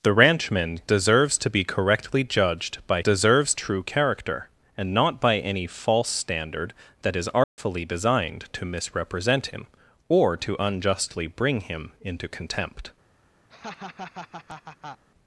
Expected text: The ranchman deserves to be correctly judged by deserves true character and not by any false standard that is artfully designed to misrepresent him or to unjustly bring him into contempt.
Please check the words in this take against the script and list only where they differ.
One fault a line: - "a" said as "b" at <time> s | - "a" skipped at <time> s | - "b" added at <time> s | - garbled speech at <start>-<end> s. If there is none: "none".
none